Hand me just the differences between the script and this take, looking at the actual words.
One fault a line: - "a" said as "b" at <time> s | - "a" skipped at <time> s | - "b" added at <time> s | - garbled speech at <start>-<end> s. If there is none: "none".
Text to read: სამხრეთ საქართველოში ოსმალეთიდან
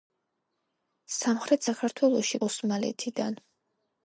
none